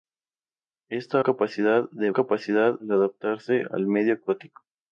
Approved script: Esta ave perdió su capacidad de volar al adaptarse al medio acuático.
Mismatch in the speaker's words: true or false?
true